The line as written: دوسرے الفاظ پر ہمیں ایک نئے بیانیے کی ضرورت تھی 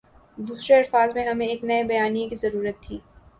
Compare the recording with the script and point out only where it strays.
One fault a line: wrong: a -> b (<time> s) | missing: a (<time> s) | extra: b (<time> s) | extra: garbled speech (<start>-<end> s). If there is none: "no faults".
wrong: پر -> میں (1.1 s)